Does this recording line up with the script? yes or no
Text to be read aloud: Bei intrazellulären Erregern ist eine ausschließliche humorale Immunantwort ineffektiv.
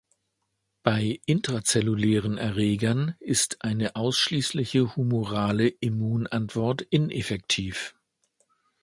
yes